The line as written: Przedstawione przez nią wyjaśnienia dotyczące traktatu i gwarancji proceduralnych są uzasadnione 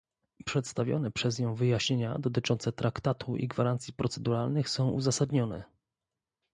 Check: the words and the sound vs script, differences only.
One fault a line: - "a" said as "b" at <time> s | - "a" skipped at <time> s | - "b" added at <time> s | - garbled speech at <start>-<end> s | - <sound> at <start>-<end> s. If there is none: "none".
none